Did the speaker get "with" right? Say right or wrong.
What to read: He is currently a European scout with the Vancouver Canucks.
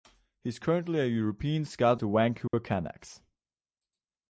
wrong